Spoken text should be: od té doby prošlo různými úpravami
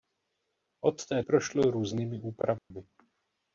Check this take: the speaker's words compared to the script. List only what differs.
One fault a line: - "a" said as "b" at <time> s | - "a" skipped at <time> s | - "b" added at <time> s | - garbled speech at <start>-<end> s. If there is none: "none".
- "doby" skipped at 1.2 s